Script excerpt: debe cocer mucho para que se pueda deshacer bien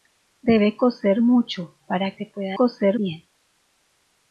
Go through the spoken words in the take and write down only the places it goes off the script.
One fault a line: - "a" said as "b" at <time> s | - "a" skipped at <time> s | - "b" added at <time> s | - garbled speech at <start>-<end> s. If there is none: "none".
- "que" skipped at 2.2 s
- "deshacer" said as "cocer" at 2.5 s